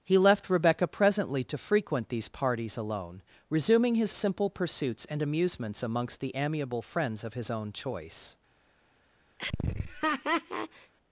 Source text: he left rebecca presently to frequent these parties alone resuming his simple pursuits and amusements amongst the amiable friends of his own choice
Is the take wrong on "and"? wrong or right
right